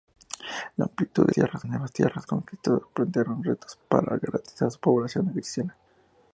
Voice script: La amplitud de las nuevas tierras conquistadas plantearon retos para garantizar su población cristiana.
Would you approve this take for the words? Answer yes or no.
no